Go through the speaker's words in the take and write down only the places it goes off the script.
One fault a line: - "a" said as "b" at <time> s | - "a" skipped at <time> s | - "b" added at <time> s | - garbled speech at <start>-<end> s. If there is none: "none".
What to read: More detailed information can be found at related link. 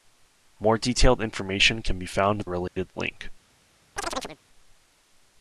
none